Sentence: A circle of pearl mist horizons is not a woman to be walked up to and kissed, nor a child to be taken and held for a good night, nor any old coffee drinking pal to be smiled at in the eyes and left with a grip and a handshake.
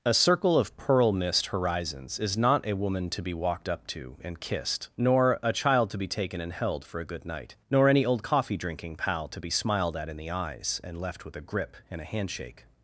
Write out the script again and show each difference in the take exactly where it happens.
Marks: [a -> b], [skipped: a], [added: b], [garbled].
A circle of pearl mist horizons is not a woman to be walked up to and kissed, nor a child to be taken and held for a good night, nor any old coffee drinking pal to be smiled at in the eyes and left with a grip and a handshake.